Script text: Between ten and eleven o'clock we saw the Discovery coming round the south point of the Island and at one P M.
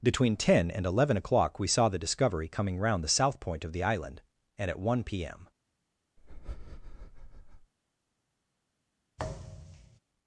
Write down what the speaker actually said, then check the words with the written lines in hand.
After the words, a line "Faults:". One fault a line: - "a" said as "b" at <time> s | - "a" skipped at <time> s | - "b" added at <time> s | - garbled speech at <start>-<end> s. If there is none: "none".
Between ten and eleven o'clock we saw the Discovery coming round the south point of the Island and at one P M.
Faults:
none